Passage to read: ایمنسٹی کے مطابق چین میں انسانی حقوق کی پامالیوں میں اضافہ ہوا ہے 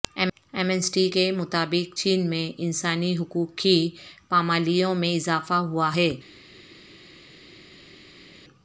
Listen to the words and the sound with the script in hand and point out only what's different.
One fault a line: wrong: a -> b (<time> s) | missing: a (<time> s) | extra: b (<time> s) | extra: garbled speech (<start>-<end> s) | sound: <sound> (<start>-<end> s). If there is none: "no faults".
no faults